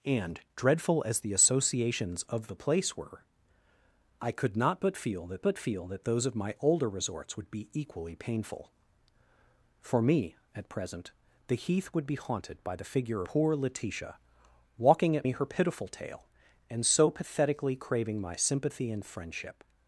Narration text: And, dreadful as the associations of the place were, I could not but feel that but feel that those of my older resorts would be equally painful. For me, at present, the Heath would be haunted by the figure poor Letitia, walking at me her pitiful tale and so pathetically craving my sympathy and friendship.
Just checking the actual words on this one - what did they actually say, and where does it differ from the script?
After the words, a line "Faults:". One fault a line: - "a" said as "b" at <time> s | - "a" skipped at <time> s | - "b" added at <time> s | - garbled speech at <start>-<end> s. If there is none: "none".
And, dreadful as the associations of the place were, I could not but feel that but feel that those of my older resorts would be equally painful. For me, at present, the Heath would be haunted by the figure poor Letitia, walking at me her pitiful tale and so pathetically craving my sympathy and friendship.
Faults:
none